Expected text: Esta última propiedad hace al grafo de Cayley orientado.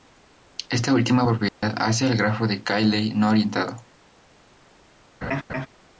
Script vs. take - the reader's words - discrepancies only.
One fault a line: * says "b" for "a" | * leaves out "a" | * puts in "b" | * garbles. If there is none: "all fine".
* puts in "no"